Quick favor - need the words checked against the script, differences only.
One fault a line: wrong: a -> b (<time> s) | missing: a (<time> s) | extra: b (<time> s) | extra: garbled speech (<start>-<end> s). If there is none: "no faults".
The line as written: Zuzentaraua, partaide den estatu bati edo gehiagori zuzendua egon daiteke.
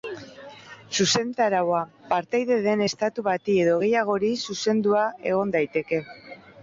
no faults